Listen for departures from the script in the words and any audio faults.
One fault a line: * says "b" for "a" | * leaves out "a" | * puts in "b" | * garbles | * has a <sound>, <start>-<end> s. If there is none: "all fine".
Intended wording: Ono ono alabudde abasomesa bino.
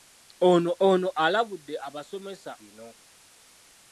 all fine